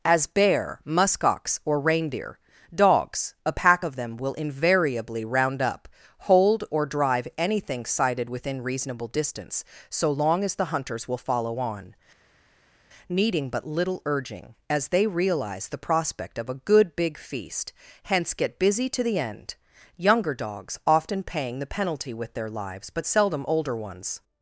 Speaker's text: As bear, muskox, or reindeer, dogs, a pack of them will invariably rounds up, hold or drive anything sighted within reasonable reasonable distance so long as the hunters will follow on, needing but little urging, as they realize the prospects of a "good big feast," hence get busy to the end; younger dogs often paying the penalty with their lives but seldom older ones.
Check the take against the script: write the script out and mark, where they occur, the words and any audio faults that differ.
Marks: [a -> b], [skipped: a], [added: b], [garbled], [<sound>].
As bear, muskox, or reindeer, dogs, a pack of them will invariably [rounds -> round] up, hold or drive anything sighted within reasonable [skipped: reasonable] distance so long as the hunters will follow on, needing but little urging, as they realize the [prospects -> prospect] of a "good big feast," hence get busy to the end; younger dogs often paying the penalty with their lives but seldom older ones.